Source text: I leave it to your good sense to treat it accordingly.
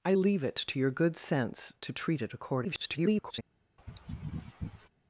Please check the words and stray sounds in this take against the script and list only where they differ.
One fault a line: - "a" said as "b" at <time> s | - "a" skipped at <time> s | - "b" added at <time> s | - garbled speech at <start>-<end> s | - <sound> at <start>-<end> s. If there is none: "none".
- garbled speech at 2.6-3.4 s
- sneeze at 3.8-4.9 s